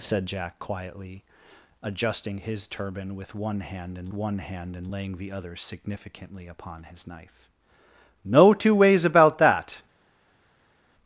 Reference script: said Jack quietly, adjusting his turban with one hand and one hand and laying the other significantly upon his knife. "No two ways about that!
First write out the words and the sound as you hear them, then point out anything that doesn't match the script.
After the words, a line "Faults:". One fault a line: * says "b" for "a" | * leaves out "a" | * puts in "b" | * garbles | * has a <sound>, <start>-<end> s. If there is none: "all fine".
said Jack quietly, adjusting his turban with one hand and one hand and laying the other significantly upon his knife. "No two ways about that!
Faults:
all fine